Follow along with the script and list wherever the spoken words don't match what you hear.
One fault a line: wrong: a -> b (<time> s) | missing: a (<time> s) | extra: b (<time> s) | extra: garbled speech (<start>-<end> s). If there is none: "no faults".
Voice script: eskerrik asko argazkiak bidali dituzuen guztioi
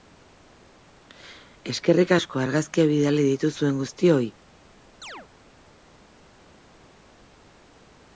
no faults